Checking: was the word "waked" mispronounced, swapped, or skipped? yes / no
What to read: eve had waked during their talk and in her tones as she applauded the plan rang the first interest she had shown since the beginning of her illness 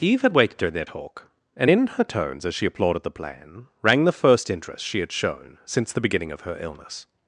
yes